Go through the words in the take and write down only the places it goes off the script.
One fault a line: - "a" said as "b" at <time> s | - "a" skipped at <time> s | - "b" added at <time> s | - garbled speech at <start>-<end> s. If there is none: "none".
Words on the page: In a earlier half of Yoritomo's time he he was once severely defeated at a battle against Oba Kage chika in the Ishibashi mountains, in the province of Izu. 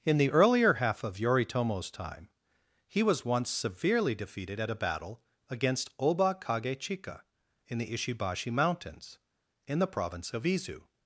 - "a" said as "the" at 0.2 s
- "he" skipped at 3.0 s